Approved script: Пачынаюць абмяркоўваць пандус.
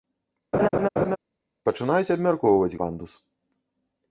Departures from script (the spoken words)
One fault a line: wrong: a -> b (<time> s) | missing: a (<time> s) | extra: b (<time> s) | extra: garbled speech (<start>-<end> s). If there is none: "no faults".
no faults